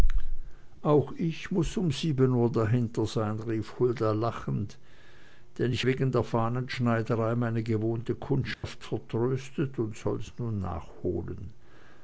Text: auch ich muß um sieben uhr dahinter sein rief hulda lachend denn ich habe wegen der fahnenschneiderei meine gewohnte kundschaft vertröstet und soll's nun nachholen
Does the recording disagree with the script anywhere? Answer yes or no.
yes